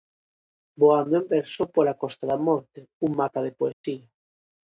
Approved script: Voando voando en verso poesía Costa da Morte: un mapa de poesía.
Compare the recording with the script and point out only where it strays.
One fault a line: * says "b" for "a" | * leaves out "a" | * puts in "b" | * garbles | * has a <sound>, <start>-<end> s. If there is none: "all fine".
* leaves out "voando"
* says "pola" for "poesía"
* has a dropout, 3.7-3.8 s